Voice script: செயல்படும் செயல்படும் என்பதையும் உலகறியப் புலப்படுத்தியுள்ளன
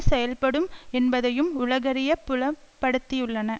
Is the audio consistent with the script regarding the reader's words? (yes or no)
no